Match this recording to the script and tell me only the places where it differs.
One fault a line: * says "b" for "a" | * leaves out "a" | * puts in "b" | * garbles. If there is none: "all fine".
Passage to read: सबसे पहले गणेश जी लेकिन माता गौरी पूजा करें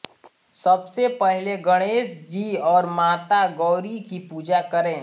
* says "और" for "लेकिन"
* puts in "की"